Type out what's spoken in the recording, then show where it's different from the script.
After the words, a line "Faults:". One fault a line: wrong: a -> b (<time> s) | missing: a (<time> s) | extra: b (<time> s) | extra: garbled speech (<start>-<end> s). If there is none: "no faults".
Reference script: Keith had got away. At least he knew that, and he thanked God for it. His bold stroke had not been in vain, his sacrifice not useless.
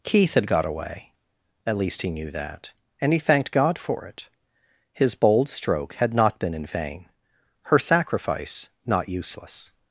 Keith had got away. At least he knew that, and he thanked God for it. His bold stroke had not been in vain, her sacrifice not useless.
Faults:
wrong: his -> her (7.6 s)